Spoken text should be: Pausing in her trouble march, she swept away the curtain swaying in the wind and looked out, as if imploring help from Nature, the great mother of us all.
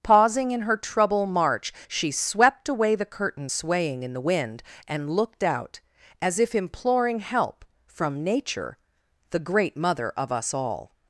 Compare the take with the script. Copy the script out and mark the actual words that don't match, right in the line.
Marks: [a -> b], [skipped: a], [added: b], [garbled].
Pausing in her trouble march, she swept away the curtain swaying in the wind and looked out, as if imploring help from Nature, the great mother of us all.